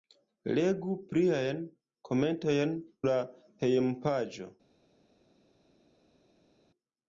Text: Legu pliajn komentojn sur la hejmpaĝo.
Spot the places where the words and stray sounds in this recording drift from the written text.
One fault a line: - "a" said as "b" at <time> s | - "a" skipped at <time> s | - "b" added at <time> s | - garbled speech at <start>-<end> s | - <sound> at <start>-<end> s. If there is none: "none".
- "sur" skipped at 2.7 s